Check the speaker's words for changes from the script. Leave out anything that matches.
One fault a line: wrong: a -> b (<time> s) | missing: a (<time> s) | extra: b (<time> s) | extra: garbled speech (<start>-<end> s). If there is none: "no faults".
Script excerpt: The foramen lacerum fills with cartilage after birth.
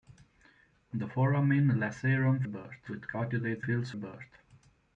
wrong: fills -> birth (2.5 s)
wrong: after -> fills (3.6 s)